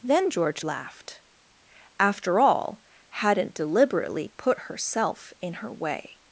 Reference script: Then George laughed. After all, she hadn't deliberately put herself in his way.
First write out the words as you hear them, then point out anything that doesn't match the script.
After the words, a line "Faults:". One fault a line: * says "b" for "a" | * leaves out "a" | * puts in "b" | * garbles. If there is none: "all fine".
Then George laughed. After all, hadn't deliberately put herself in her way.
Faults:
* leaves out "she"
* says "her" for "his"